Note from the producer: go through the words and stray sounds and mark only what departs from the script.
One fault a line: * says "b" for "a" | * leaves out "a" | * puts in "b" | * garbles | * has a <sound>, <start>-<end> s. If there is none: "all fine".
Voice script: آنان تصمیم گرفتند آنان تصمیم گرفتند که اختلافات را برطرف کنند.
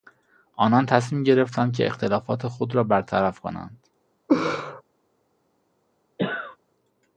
* leaves out "آنان تصمیم گرفتند"
* puts in "خود"
* has a laugh, 4.3-4.8 s
* has a cough, 6.2-6.6 s